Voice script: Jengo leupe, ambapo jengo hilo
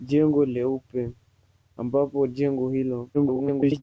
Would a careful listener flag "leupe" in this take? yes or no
no